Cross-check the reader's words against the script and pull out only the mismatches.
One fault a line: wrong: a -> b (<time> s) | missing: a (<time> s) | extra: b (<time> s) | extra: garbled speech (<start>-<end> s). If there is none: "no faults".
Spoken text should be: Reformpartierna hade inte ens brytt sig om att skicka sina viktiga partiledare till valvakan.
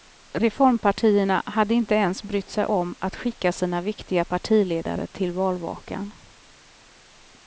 no faults